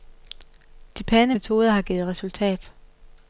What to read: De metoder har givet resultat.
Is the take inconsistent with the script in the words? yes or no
yes